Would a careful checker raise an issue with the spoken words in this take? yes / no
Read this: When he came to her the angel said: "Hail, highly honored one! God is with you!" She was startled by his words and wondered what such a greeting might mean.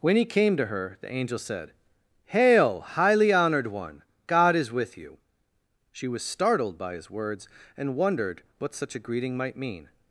no